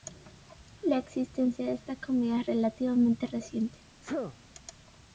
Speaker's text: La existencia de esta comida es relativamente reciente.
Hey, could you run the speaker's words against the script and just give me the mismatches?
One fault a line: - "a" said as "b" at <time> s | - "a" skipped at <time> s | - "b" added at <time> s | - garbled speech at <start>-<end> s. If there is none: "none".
none